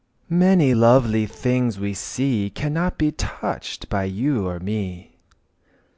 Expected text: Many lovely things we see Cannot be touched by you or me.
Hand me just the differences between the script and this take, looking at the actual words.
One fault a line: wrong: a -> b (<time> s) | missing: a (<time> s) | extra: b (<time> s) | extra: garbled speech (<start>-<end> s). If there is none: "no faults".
no faults